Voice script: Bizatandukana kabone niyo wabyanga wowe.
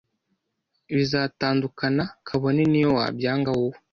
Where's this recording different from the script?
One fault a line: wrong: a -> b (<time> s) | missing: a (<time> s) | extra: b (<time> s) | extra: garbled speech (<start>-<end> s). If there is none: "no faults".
no faults